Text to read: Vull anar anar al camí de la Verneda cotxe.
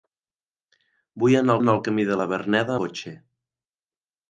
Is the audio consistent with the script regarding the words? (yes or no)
yes